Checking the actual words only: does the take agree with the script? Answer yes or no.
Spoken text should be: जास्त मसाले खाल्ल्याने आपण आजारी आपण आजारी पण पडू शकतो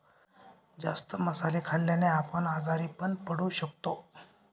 no